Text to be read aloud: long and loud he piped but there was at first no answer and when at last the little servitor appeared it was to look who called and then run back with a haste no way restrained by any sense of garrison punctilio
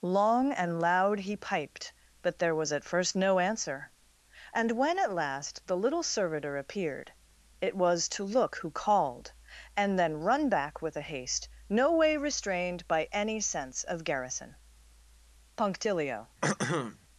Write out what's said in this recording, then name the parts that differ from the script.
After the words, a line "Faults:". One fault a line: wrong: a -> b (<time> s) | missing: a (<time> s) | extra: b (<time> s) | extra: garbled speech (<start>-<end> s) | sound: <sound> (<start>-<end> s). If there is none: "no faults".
long and loud he piped but there was at first no answer and when at last the little servitor appeared it was to look who called and then run back with a haste no way restrained by any sense of garrison punctilio
Faults:
sound: throat clearing (16.4-17.0 s)